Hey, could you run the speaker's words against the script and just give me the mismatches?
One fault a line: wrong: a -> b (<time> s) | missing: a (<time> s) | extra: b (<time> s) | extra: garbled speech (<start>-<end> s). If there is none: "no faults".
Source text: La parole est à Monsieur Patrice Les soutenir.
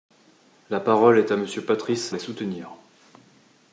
no faults